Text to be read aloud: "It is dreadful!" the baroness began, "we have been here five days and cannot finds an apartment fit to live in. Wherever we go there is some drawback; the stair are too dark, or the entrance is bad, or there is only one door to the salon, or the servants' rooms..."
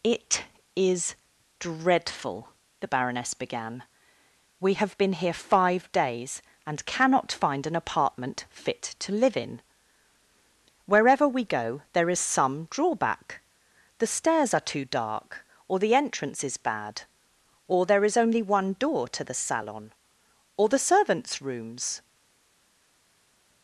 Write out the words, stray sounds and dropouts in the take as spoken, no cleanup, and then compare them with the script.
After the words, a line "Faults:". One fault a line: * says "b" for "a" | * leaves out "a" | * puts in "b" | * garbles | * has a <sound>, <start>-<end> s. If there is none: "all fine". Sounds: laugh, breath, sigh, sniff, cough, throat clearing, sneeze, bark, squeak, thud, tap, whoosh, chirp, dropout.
"It is dreadful!" the baroness began, "we have been here five days and cannot find an apartment fit to live in. Wherever we go there is some drawback; the stairs are too dark, or the entrance is bad, or there is only one door to the salon, or the servants' rooms..."
Faults:
* says "find" for "finds"
* says "stairs" for "stair"